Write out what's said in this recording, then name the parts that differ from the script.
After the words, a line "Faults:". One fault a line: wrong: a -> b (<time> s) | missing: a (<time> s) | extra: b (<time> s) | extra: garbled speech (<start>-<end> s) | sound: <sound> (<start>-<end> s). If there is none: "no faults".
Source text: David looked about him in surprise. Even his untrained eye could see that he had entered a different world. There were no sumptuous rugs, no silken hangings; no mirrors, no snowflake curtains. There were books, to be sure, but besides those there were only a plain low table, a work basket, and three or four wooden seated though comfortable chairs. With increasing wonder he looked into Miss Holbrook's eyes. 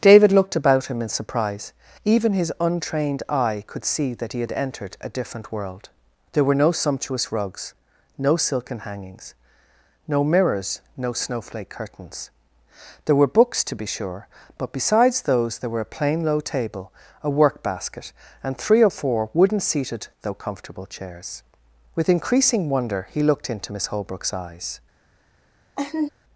David looked about him in surprise. Even his untrained eye could see that he had entered a different world. There were no sumptuous rugs, no silken hangings; no mirrors, no snowflake curtains. There were books, to be sure, but besides those there were a plain low table, a work basket, and three or four wooden seated though comfortable chairs. With increasing wonder he looked into Miss Holbrook's eyes.
Faults:
missing: only (15.8 s)
sound: laugh (25.8-26.1 s)